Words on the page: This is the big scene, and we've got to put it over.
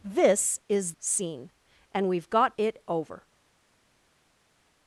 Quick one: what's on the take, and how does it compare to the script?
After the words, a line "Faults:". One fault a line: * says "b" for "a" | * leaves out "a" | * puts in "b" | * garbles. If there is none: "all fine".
This is scene, and we've got it over.
Faults:
* leaves out "the big"
* leaves out "to put"